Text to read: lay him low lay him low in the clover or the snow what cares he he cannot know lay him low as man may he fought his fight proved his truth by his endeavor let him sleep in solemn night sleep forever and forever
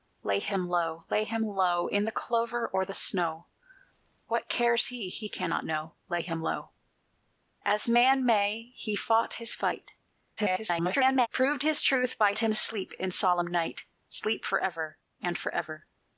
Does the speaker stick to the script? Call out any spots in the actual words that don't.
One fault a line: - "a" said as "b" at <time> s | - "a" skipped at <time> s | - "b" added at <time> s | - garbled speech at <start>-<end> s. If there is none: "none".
- garbled speech at 10.4-11.3 s
- "his endeavor let" skipped at 12.3 s